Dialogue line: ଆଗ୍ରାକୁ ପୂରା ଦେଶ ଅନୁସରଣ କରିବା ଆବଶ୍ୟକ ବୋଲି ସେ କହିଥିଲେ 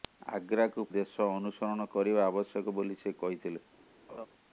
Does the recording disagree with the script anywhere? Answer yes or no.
yes